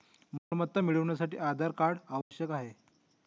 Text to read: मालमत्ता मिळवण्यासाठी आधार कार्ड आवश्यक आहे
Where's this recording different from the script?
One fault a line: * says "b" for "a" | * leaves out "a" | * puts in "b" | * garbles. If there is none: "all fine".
all fine